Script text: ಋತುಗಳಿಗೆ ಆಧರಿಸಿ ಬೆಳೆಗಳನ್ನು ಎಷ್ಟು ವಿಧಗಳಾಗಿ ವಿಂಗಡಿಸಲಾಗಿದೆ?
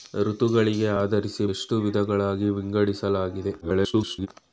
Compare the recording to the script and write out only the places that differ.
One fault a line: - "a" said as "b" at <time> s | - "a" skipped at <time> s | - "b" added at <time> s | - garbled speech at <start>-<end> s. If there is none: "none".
- "ಬೆಳೆಗಳನ್ನು" skipped at 1.5 s
- garbled speech at 3.6-4.3 s